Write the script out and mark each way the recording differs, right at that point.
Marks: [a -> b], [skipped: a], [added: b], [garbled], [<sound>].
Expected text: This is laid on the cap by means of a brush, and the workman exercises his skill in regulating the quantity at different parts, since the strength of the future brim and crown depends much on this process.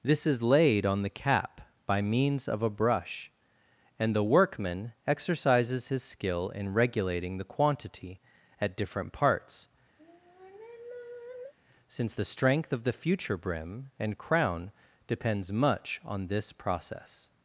This is laid on the cap by means of a brush, and the workman exercises his skill in regulating the quantity at different parts, [sigh] since the strength of the future brim and crown depends much on this process.